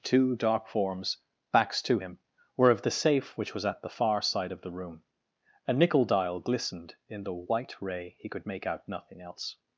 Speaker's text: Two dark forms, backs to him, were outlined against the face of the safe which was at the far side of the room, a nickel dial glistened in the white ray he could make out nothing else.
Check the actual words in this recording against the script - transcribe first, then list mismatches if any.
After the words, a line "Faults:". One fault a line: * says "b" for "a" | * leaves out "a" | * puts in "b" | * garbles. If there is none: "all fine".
Two dark forms, backs to him, were of the safe which was at the far side of the room, a nickel dial glistened in the white ray he could make out nothing else.
Faults:
* leaves out "outlined against the face"